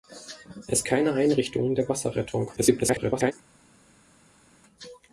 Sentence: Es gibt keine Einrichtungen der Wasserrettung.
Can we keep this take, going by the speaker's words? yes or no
no